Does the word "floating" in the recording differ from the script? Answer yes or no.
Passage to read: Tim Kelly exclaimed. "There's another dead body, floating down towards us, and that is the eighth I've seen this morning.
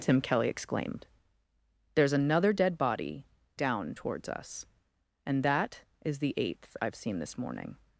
yes